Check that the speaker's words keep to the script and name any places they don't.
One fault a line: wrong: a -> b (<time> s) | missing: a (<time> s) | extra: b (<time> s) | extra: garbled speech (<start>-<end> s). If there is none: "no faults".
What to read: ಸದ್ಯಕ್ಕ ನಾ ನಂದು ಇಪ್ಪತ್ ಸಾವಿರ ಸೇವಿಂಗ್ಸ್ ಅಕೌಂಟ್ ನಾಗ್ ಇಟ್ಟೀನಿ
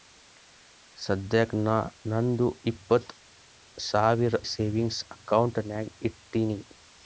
no faults